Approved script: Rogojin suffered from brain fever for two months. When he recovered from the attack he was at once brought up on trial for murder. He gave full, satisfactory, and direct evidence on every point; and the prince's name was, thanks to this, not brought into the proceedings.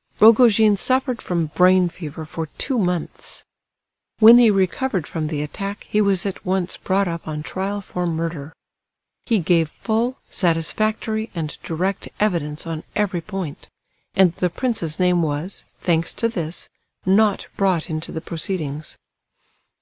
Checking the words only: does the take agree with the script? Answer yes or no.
yes